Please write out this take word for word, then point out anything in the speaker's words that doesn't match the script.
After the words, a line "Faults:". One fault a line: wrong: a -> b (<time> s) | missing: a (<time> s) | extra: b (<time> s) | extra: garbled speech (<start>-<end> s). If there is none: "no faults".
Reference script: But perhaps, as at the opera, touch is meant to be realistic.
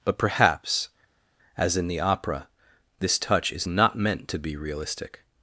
But perhaps, as in the opera, this touch is not meant to be realistic.
Faults:
wrong: at -> in (1.8 s)
extra: this (3.0 s)
extra: not (3.7 s)